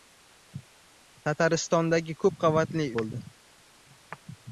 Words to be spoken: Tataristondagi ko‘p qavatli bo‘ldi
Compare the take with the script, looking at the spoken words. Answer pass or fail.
pass